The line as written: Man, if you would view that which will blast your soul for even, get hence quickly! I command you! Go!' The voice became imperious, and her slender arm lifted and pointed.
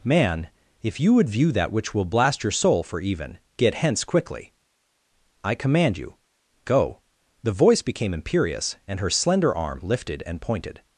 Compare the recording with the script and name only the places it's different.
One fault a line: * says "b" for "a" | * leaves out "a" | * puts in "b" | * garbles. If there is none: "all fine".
all fine